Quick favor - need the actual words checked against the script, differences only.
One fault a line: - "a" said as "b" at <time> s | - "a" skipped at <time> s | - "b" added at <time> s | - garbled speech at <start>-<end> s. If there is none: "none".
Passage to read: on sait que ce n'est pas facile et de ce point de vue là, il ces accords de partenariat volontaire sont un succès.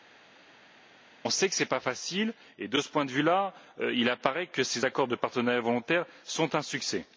- "apparaît que" added at 4.1 s